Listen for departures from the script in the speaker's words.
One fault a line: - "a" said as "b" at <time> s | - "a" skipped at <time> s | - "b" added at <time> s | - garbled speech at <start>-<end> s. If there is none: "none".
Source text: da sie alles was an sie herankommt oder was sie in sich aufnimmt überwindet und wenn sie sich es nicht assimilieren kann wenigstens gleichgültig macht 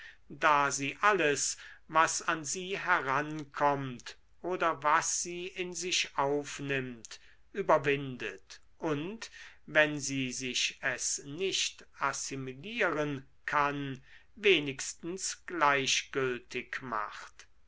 none